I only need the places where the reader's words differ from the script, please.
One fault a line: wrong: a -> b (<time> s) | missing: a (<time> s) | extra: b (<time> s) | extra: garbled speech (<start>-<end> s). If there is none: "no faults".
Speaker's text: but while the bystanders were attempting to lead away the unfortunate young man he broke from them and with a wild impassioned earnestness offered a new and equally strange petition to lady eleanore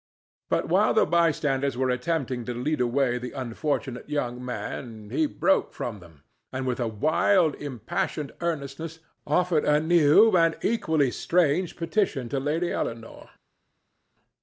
no faults